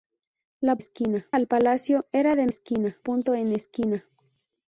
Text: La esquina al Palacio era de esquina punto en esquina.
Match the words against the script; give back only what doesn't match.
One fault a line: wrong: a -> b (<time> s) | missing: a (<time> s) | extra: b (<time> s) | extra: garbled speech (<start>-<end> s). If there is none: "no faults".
no faults